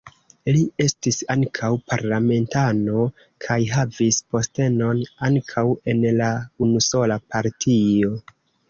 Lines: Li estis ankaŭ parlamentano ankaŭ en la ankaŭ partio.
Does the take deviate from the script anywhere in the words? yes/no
yes